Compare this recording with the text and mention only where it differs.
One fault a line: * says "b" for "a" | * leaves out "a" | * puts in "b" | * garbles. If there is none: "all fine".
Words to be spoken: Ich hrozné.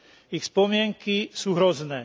* puts in "spomienky sú"